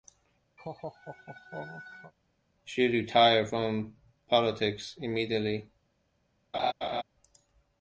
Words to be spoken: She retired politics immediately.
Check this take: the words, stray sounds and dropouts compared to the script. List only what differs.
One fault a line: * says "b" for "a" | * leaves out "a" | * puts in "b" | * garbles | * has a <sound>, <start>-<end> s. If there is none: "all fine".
* has a laugh, 0.6-2.1 s
* puts in "from"
* has a laugh, 6.5-7.0 s